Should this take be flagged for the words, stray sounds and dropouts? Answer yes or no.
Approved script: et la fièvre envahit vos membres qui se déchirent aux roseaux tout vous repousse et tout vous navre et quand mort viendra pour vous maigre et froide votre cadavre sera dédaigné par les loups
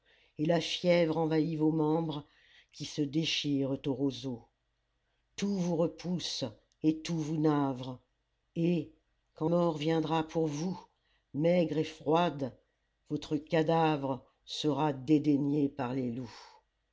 no